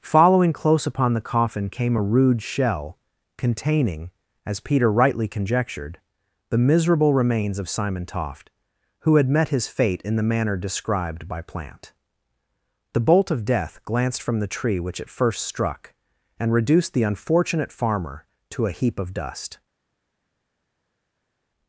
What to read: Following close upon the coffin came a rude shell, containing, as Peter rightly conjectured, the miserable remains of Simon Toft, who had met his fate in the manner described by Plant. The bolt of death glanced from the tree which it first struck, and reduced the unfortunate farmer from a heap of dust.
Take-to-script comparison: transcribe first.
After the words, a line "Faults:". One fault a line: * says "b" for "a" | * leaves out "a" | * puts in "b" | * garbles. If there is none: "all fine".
Following close upon the coffin came a rude shell, containing, as Peter rightly conjectured, the miserable remains of Simon Toft, who had met his fate in the manner described by Plant. The bolt of death glanced from the tree which it first struck, and reduced the unfortunate farmer to a heap of dust.
Faults:
* says "to" for "from"